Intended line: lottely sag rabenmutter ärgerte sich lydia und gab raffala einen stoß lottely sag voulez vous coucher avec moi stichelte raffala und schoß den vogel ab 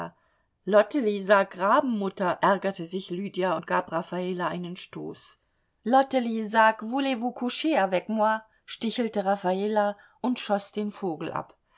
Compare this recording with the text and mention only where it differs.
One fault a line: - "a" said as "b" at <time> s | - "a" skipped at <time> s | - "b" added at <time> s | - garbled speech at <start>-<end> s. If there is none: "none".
none